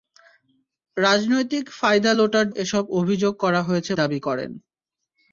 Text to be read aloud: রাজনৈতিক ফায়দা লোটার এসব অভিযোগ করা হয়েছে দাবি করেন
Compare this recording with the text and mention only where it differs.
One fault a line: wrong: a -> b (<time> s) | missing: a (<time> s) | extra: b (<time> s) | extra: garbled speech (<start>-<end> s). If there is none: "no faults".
no faults